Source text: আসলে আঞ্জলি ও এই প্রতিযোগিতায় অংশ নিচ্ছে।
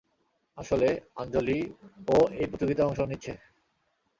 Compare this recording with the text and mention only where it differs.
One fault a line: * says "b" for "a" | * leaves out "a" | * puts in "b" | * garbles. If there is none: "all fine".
all fine